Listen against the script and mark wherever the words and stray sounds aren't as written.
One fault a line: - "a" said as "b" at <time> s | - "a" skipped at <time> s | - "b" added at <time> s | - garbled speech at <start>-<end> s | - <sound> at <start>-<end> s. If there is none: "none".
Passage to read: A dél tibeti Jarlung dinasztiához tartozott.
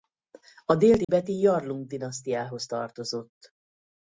- dropout at 1.0-1.1 s